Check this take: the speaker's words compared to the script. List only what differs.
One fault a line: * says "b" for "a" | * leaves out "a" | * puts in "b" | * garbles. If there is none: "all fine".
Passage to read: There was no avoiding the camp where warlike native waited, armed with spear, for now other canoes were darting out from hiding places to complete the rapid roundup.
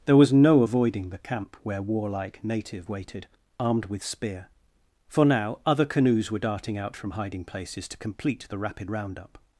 all fine